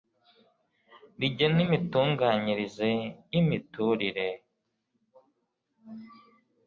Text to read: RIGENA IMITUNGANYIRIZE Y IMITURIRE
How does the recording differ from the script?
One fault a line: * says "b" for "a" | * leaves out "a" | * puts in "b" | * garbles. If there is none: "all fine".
all fine